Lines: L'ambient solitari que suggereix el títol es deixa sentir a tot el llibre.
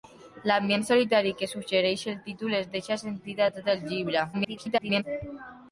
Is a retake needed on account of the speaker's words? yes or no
yes